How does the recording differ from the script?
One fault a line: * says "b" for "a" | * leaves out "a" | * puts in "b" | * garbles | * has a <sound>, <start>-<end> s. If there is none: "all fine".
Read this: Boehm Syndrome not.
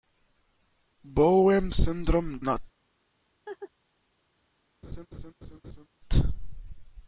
* has a laugh, 3.5-3.7 s
* has a laugh, 4.8-5.9 s